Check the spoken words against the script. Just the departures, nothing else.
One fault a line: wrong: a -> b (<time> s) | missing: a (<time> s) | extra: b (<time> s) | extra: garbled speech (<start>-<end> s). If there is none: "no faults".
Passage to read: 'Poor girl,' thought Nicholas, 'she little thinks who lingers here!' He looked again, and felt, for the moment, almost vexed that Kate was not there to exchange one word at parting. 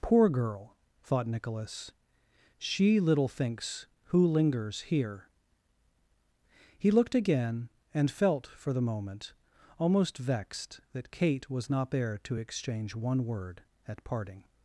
no faults